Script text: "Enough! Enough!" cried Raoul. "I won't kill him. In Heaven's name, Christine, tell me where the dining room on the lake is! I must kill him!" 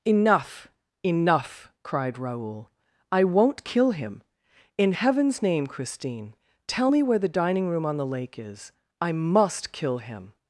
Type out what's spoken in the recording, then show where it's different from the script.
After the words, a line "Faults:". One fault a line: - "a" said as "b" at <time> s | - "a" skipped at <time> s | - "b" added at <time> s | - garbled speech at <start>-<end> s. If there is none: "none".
"Enough! Enough!" cried Raoul. "I won't kill him. In Heaven's name, Christine, tell me where the dining room on the lake is! I must kill him!"
Faults:
none